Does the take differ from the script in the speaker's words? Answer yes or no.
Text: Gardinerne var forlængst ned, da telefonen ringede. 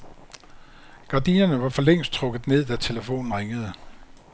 yes